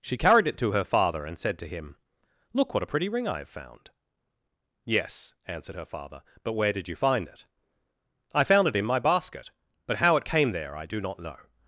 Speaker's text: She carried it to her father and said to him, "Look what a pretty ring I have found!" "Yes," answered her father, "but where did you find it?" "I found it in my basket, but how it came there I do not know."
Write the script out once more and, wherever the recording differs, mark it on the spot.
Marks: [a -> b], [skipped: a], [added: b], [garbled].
She carried it to her father and said to him, "Look what a pretty ring I have found!" "Yes," answered her father, "but where did you find it?" "I found it in my basket, but how it came there I do not know."